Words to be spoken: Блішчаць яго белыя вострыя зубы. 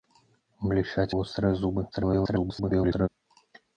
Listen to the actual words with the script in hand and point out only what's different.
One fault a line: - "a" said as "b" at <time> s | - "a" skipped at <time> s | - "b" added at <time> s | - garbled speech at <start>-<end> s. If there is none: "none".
- "яго белыя" skipped at 1.1 s
- garbled speech at 1.9-3.1 s